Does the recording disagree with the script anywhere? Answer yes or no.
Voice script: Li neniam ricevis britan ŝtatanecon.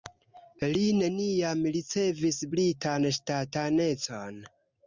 no